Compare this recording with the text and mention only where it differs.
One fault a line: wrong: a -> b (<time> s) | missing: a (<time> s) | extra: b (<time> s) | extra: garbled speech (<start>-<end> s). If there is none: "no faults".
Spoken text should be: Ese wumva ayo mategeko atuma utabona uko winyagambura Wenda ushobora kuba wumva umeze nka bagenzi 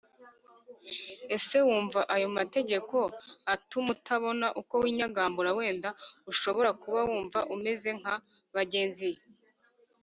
no faults